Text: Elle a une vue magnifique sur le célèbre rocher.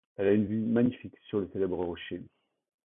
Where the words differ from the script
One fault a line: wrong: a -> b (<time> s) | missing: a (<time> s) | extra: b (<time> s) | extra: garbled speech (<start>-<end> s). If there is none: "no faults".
no faults